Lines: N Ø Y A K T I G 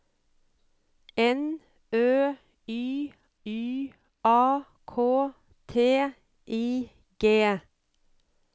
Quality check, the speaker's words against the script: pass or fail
fail